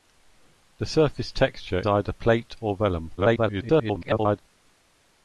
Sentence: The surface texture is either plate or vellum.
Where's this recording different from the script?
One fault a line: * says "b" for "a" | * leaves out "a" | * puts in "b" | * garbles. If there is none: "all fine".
* leaves out "is"
* garbles